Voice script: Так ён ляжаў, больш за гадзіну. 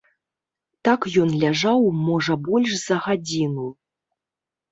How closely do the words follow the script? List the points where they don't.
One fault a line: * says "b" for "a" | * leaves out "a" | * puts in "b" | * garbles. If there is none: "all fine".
* puts in "можа"